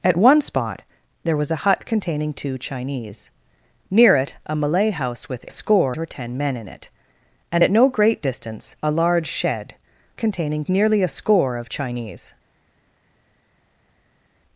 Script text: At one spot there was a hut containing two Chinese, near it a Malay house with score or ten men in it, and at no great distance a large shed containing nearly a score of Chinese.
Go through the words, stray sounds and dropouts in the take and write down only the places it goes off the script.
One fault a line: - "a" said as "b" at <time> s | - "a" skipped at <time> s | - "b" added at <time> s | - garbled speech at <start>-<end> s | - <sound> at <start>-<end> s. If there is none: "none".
none